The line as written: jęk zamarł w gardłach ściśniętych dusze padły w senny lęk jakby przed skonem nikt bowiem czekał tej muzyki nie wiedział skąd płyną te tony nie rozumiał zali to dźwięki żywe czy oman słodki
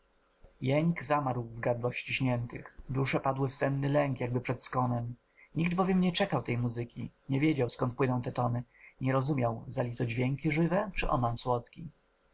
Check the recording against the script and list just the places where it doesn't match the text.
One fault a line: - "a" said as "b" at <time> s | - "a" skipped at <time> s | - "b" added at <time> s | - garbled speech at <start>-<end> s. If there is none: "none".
- "nie" added at 6.0 s